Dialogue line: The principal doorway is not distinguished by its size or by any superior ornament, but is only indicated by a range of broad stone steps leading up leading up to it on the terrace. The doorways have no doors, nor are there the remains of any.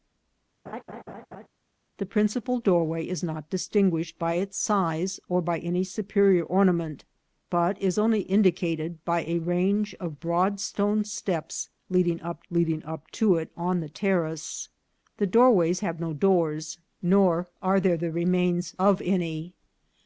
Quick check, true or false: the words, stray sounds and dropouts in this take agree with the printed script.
false